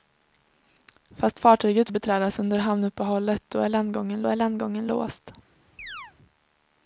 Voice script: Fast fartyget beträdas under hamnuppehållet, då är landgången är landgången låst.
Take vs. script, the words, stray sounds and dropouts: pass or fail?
fail